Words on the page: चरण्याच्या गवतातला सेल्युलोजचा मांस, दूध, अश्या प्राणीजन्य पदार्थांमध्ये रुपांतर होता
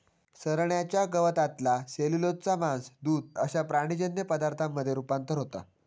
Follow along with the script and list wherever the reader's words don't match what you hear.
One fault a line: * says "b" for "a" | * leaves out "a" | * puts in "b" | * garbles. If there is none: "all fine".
all fine